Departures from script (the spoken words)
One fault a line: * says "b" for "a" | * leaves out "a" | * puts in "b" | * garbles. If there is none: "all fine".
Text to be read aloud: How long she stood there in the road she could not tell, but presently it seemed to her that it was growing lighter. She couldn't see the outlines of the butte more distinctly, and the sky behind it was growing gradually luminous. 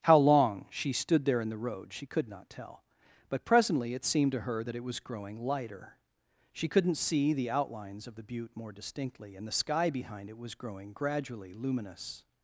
all fine